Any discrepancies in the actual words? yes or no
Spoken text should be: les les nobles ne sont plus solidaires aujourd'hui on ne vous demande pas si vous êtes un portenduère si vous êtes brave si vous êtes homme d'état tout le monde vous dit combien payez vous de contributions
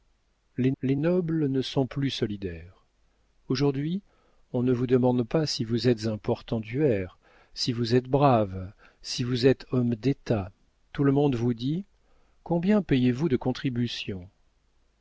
no